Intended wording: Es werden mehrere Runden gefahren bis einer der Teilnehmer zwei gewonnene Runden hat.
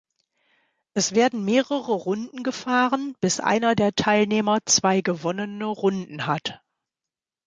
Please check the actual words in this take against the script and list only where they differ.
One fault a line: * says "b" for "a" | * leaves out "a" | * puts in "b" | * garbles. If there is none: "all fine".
all fine